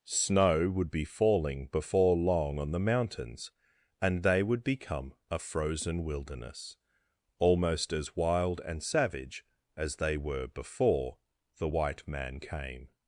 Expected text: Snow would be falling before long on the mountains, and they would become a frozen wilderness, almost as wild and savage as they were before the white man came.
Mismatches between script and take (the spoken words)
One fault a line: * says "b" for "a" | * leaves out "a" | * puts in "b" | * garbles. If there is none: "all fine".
all fine